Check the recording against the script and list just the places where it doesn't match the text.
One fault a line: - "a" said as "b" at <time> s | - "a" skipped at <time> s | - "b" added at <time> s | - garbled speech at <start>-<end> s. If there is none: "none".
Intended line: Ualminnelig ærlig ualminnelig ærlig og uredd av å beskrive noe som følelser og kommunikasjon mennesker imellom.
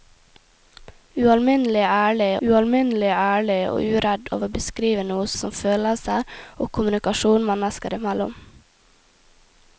none